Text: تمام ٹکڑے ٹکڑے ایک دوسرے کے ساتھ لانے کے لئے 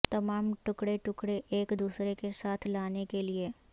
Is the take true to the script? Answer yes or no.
yes